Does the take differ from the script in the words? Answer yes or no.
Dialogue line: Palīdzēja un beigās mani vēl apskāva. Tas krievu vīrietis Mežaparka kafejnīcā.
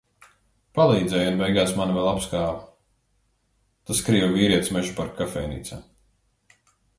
no